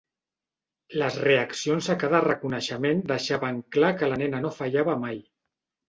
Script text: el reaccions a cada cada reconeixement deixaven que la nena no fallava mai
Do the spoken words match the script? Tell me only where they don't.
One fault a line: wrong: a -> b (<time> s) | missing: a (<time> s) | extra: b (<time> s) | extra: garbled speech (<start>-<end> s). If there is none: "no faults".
wrong: el -> les (1.0 s)
missing: cada (2.2 s)
extra: clar (3.8 s)